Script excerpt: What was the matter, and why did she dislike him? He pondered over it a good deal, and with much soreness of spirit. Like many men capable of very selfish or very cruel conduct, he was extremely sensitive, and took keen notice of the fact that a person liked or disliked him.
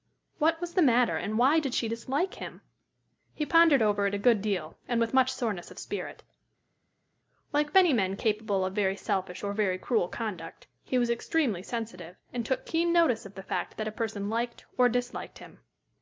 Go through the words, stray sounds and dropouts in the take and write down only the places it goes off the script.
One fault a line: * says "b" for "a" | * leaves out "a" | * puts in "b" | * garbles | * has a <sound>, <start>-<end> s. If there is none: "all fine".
all fine